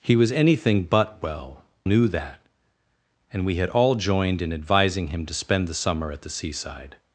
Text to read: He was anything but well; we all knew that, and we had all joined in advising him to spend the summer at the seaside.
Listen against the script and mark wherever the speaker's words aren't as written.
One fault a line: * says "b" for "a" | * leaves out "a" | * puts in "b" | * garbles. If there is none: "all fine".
* leaves out "we all"